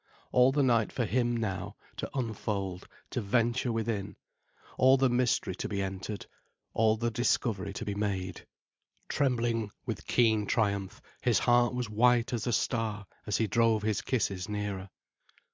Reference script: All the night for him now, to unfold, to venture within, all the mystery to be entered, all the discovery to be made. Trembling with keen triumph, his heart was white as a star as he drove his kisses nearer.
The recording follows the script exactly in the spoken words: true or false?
true